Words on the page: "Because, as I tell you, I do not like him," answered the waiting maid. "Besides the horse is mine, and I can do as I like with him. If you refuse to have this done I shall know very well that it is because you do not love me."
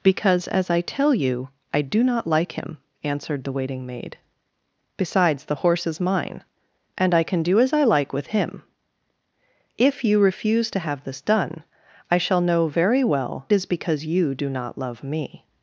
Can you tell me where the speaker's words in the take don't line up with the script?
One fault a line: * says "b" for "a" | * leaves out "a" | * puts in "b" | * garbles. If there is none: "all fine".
* leaves out "that it"